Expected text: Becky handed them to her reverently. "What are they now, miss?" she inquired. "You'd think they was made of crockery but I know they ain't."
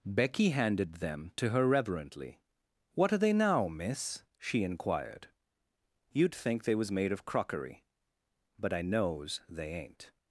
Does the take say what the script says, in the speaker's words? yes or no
no